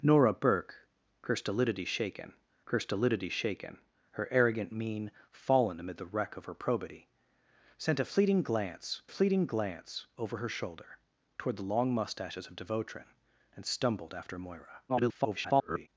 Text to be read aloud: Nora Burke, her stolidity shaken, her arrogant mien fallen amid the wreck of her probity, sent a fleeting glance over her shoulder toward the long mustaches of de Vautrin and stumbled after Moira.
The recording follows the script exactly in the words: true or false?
false